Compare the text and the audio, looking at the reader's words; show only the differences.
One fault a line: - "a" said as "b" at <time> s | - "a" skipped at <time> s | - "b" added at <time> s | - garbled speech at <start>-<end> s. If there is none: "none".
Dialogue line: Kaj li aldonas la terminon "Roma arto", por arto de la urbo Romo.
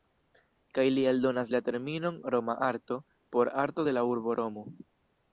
none